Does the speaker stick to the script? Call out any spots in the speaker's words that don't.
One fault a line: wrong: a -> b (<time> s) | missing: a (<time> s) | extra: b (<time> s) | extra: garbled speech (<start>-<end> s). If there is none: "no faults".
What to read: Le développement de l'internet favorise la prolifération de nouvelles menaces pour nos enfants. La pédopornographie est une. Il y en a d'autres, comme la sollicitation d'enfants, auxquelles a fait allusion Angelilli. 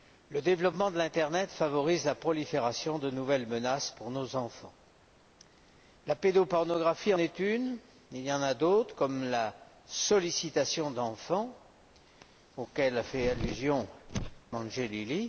no faults